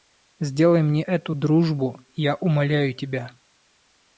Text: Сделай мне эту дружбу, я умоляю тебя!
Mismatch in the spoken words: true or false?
false